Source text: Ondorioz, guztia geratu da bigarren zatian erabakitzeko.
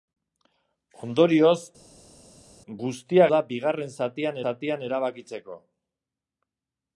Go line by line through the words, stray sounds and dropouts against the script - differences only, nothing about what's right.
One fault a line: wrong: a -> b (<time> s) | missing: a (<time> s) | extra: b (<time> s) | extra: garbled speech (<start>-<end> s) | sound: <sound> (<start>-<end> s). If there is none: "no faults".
missing: geratu (3.3 s)
extra: zatian (4.5 s)